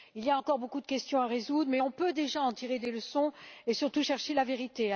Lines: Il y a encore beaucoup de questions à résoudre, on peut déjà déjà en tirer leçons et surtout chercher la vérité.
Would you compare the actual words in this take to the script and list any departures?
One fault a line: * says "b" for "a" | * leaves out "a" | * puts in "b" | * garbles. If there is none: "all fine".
* puts in "mais"
* leaves out "déjà"
* puts in "des"